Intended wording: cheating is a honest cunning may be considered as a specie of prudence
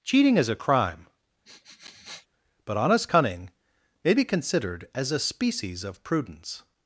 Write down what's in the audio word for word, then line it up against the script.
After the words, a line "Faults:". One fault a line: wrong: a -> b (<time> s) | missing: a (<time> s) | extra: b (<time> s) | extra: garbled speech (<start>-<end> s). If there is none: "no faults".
cheating is a crime but honest cunning may be considered as a species of prudence
Faults:
extra: crime but (0.6 s)
wrong: specie -> species (5.2 s)